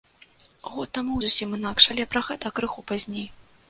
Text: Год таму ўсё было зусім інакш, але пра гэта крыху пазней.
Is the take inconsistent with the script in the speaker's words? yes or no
yes